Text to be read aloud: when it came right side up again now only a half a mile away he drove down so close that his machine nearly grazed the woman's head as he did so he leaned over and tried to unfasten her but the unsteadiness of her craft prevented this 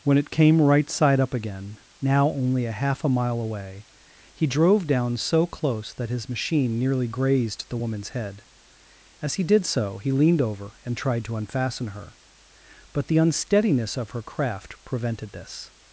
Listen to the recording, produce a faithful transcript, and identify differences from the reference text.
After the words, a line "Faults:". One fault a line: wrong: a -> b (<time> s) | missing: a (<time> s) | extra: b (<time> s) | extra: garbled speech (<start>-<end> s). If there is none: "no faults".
when it came right side up again now only a half a mile away he drove down so close that his machine nearly grazed the woman's head as he did so he leaned over and tried to unfasten her but the unsteadiness of her craft prevented this
Faults:
no faults